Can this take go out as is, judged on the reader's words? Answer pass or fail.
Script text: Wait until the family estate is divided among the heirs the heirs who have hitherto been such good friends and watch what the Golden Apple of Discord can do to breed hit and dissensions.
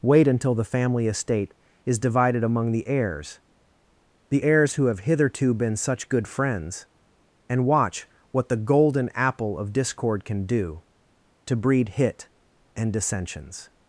pass